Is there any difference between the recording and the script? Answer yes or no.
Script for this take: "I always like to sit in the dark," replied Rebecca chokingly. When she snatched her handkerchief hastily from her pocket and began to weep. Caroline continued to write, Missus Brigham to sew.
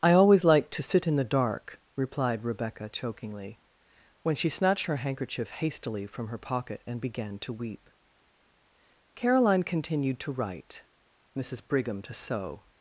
no